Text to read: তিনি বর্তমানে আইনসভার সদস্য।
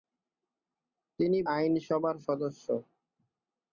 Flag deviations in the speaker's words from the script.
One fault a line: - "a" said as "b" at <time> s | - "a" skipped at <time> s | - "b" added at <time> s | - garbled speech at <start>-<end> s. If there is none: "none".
- "বর্তমানে" skipped at 1.4 s